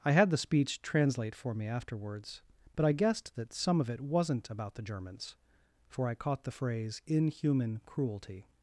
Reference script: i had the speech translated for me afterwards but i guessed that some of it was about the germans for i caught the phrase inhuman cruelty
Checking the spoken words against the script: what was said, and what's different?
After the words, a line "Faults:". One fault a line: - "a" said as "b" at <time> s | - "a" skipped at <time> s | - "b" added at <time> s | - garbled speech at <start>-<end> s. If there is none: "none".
i had the speech translate for me afterwards but i guessed that some of it wasn't about the germans for i caught the phrase inhuman cruelty
Faults:
- "translated" said as "translate" at 0.8 s
- "was" said as "wasn't" at 4.0 s